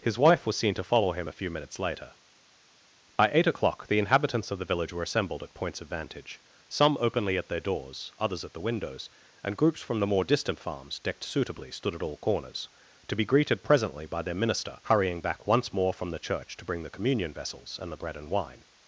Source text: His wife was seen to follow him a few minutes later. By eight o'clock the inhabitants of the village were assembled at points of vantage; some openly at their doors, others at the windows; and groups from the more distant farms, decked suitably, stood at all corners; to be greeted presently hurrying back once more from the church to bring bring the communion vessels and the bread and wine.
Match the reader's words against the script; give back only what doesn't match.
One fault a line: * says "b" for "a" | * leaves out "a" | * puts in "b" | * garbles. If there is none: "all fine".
* puts in "by their minister"
* leaves out "bring"